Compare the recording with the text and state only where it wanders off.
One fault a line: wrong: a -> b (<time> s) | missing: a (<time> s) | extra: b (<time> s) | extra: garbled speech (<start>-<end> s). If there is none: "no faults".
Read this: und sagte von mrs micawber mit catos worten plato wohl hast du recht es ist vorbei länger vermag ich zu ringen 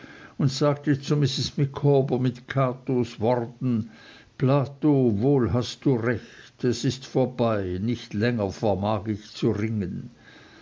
wrong: von -> zu (1.0 s)
extra: nicht (7.8 s)